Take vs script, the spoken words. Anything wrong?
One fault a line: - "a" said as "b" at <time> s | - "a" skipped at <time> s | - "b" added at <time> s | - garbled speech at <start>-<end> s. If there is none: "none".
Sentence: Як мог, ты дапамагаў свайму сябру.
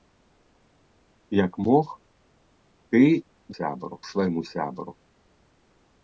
- "дапамагаў" said as "сябру" at 3.6 s